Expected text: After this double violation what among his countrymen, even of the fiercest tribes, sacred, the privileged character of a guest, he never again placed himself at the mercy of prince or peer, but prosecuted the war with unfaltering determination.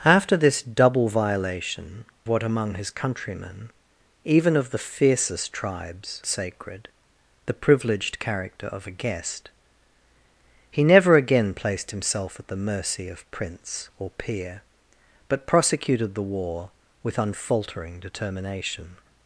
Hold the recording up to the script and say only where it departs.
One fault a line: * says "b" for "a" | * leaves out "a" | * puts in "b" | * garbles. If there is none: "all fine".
all fine